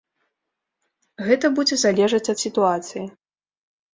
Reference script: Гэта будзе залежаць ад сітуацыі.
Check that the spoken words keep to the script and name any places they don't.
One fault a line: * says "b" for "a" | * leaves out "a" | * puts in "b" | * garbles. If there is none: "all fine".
all fine